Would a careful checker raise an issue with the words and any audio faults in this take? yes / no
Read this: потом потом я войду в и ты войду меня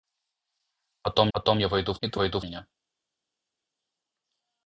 no